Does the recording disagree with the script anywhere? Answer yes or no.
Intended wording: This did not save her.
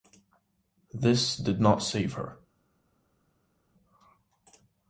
no